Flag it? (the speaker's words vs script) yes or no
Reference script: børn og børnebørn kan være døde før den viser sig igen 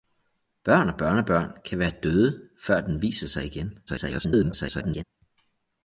yes